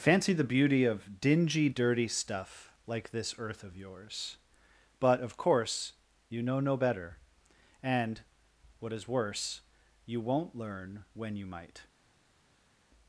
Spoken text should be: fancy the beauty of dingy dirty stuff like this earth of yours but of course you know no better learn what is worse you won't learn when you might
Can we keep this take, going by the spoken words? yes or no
no